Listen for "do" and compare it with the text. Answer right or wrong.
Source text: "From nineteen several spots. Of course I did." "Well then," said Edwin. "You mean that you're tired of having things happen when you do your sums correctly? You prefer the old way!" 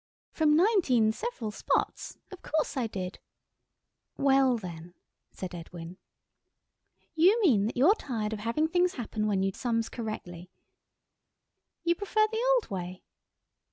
wrong